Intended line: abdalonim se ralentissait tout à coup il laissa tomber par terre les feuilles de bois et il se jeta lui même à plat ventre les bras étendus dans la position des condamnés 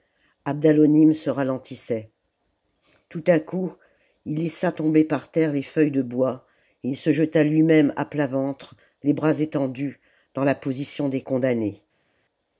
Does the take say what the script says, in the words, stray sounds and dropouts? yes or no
yes